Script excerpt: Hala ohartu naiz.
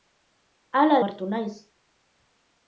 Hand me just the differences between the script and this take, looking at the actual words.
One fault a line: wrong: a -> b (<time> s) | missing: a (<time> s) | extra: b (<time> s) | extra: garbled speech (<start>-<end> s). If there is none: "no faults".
no faults